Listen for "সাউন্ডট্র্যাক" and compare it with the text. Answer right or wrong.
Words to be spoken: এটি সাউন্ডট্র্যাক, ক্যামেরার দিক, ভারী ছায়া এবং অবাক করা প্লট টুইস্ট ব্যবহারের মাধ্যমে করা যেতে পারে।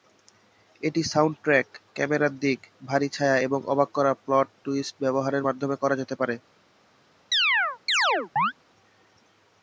right